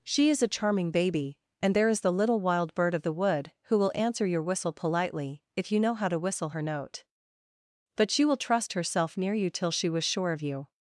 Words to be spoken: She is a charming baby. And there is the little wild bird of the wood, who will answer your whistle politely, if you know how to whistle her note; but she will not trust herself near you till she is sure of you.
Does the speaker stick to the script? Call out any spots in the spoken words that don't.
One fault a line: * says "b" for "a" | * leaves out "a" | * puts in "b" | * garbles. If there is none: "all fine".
* leaves out "not"
* says "was" for "is"